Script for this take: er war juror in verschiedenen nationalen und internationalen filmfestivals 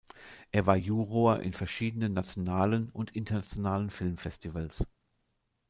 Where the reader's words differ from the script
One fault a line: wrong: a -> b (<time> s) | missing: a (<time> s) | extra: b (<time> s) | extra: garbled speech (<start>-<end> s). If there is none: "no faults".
no faults